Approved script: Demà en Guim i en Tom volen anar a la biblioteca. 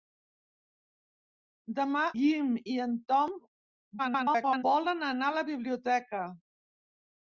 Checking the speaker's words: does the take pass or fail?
fail